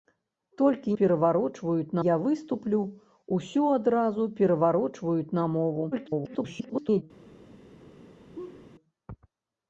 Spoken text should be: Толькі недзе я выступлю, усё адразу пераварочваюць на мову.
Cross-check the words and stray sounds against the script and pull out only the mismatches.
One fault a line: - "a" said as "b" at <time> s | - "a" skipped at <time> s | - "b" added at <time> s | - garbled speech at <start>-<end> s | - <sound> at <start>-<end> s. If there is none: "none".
- "недзе" said as "пераварочваюць" at 1.0 s
- garbled speech at 5.9-7.0 s
- laugh at 8.3-8.7 s